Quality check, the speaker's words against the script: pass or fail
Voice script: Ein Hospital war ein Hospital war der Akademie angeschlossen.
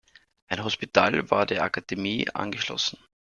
fail